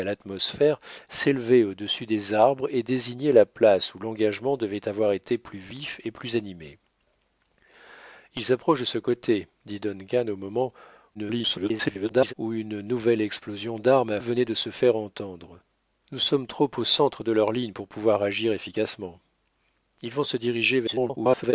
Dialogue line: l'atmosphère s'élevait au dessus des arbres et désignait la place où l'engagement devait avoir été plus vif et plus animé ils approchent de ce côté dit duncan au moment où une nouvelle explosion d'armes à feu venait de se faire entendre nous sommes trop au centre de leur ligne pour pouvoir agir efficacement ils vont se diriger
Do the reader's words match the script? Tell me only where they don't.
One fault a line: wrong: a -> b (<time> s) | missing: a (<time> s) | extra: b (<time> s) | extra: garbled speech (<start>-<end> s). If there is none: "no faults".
extra: garbled speech (11.1-12.3 s)
missing: feu (14.2 s)
extra: garbled speech (20.9-21.5 s)